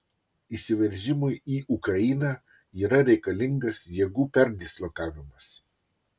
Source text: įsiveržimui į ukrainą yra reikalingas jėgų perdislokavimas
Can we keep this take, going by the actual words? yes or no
yes